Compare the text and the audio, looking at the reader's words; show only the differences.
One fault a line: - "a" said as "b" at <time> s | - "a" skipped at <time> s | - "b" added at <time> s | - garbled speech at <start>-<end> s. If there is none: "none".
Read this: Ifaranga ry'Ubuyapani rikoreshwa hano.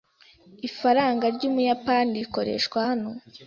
none